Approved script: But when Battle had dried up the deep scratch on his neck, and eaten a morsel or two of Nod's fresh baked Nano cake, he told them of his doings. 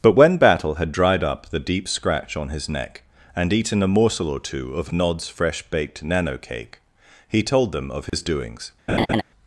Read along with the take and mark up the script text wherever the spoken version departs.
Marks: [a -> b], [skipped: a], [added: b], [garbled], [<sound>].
But when Battle had dried up the deep scratch on his neck, and eaten a morsel or two of Nod's fresh baked Nano cake, he told them of his [dropout] doings. [laugh]